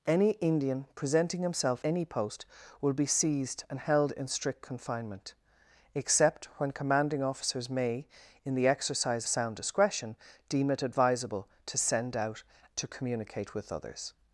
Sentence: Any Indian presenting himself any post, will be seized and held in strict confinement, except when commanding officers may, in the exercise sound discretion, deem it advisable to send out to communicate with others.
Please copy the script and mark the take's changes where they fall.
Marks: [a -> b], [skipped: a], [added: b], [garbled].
Any Indian presenting himself any post, will be seized and held in strict confinement, except when commanding officers may, in the exercise sound discretion, deem it advisable to send out to communicate with others.